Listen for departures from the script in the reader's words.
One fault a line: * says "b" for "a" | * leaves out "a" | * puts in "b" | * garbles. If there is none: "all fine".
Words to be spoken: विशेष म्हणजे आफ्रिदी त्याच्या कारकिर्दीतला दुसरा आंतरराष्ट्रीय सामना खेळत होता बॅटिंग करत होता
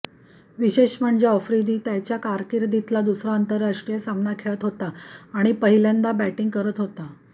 * puts in "आणि पहिल्यांदा"